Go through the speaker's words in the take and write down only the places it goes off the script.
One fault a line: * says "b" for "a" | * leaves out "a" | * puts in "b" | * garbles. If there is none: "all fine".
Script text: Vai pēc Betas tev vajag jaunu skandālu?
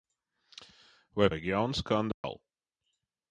* leaves out "pēc Betas tev"